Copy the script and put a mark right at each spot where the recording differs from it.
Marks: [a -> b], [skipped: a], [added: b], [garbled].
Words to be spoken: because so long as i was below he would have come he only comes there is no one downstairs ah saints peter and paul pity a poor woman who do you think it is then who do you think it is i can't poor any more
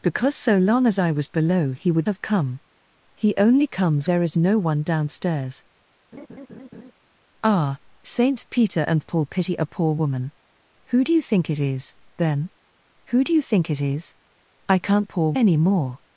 because so long as i was below he would have come he only comes there is no one downstairs ah saints peter and paul pity a poor woman who do you think it is then who do you think it is i can't poor any more